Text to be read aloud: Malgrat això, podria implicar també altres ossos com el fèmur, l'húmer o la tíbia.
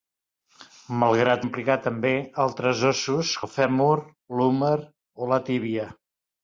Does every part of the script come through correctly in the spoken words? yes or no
no